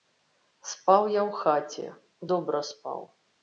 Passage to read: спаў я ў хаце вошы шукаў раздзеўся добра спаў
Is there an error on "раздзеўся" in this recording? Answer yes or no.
yes